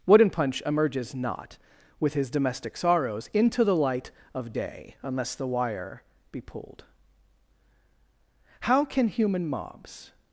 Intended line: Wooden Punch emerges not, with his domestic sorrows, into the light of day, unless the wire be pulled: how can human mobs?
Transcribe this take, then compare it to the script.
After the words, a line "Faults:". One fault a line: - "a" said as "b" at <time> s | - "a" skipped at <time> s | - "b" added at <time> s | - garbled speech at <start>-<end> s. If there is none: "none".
Wooden Punch emerges not, with his domestic sorrows, into the light of day, unless the wire be pulled: how can human mobs?
Faults:
none